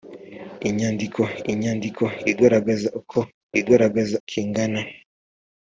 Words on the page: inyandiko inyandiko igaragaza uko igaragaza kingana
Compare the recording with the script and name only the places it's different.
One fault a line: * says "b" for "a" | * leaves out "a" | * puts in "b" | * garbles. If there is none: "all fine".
all fine